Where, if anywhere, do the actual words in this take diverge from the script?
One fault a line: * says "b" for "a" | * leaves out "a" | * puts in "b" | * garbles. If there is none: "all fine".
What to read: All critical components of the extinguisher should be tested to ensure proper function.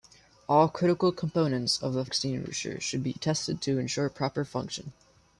all fine